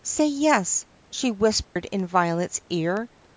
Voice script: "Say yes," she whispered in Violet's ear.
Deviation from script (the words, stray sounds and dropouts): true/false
true